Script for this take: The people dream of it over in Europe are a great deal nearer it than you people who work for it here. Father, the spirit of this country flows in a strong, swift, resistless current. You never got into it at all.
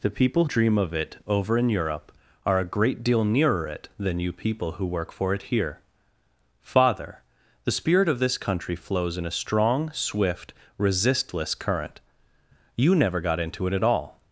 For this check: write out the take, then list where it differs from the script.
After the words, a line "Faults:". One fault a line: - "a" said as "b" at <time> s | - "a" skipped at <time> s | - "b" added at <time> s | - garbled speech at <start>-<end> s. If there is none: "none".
The people dream of it over in Europe are a great deal nearer it than you people who work for it here. Father, the spirit of this country flows in a strong, swift, resistless current. You never got into it at all.
Faults:
none